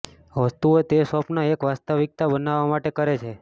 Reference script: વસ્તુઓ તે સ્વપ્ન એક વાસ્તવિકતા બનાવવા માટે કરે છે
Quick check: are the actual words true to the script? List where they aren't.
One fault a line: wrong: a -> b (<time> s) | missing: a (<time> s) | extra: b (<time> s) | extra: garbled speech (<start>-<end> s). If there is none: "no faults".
no faults